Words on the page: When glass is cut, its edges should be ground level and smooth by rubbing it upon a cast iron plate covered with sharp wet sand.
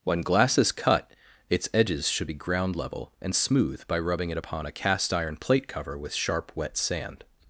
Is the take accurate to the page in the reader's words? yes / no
no